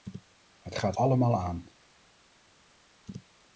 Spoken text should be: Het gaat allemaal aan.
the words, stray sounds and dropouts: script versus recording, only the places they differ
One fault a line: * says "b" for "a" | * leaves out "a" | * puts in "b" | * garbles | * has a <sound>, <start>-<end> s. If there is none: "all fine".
all fine